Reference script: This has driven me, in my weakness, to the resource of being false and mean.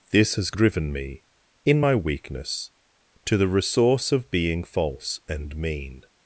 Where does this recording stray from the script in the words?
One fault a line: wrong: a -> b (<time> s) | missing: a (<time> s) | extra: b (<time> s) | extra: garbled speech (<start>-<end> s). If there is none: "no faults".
no faults